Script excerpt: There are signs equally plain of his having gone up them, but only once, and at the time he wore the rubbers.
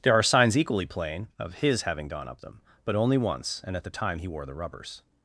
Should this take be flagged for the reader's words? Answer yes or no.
no